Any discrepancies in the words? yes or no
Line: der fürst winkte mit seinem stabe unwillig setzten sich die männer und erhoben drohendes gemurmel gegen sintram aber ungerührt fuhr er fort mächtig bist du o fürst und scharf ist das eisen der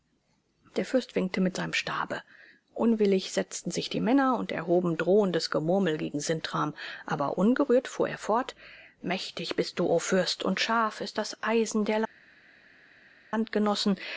no